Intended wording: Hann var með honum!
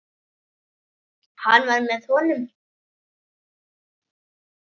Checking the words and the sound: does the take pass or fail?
pass